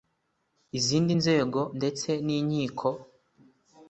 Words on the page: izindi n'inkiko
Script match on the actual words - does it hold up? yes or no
no